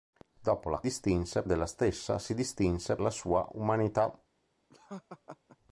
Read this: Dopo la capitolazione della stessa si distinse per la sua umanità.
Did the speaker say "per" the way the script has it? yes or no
no